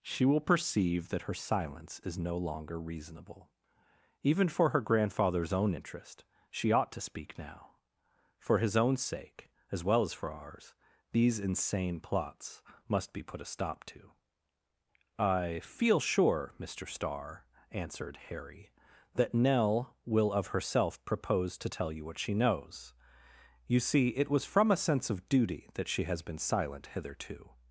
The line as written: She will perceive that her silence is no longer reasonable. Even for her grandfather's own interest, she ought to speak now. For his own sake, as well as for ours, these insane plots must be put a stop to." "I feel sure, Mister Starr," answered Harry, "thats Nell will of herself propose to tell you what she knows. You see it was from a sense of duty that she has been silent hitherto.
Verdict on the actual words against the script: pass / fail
fail